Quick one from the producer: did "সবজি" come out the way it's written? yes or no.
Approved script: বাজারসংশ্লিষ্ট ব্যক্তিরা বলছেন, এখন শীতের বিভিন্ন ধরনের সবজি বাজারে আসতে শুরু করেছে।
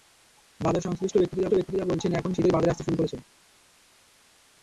no